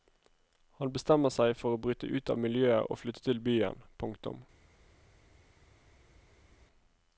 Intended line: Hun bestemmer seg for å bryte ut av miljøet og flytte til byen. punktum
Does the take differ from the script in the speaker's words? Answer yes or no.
yes